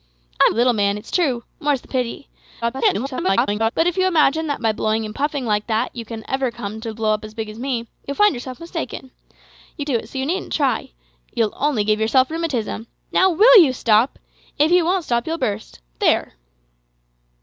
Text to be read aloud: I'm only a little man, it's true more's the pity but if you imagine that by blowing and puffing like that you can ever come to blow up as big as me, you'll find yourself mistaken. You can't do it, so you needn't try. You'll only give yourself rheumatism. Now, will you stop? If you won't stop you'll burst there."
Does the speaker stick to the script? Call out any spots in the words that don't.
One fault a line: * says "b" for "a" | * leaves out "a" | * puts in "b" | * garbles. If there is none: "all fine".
* leaves out "only"
* garbles
* leaves out "can't"